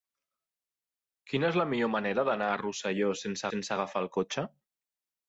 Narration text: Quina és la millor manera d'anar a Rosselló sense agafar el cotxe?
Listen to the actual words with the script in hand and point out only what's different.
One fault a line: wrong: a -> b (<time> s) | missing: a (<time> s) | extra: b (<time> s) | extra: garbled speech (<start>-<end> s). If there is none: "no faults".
extra: sense (3.5 s)